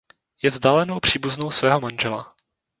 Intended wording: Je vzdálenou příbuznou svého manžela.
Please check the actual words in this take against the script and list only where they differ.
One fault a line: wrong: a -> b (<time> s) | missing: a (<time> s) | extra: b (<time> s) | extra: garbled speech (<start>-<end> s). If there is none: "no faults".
no faults